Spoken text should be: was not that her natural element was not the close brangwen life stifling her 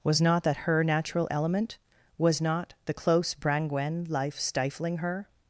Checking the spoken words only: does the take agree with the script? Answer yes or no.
yes